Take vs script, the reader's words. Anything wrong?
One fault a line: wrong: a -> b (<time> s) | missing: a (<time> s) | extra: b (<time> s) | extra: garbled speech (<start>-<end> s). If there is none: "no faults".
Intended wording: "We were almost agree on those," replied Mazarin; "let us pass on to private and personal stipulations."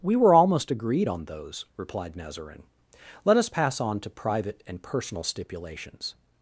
wrong: agree -> agreed (0.7 s)